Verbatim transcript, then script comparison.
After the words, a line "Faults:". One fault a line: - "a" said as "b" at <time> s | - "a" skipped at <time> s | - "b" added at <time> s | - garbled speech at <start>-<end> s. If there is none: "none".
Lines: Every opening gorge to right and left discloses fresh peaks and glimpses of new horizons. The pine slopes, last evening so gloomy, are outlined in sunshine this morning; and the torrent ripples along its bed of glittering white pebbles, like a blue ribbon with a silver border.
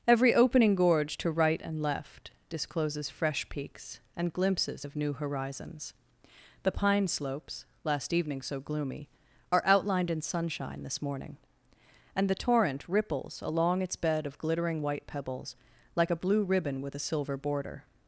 Every opening gorge to right and left discloses fresh peaks and glimpses of new horizons. The pine slopes, last evening so gloomy, are outlined in sunshine this morning; and the torrent ripples along its bed of glittering white pebbles, like a blue ribbon with a silver border.
Faults:
none